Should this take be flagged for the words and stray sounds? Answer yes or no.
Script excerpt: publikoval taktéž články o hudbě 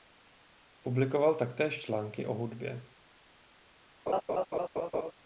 yes